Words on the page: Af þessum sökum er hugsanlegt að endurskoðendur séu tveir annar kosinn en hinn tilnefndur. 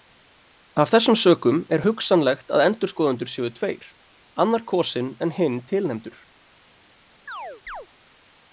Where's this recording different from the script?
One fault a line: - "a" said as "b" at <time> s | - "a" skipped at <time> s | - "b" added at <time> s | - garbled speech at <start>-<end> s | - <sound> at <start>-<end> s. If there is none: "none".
- chirp at 7.3-7.9 s